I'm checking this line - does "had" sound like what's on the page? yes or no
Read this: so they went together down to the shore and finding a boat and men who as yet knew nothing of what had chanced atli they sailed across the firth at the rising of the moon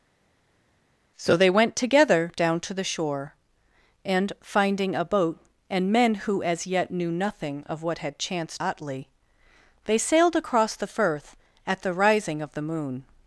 yes